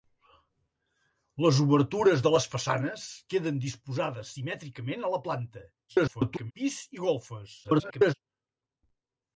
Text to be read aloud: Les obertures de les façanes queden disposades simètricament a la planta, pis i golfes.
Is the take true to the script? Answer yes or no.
no